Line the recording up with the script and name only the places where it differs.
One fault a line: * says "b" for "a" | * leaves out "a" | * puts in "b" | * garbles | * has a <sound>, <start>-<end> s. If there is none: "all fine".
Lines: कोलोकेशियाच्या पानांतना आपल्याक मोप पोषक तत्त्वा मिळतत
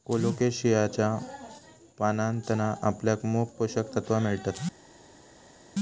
all fine